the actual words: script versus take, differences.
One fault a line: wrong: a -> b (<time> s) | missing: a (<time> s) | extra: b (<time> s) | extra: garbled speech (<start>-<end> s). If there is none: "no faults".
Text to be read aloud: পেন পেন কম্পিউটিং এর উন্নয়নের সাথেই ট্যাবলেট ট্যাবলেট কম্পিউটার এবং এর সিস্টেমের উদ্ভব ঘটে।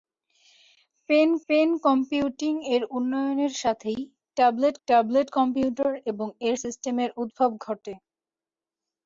no faults